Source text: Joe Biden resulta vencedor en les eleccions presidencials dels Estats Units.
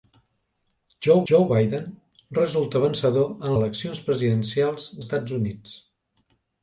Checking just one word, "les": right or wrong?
wrong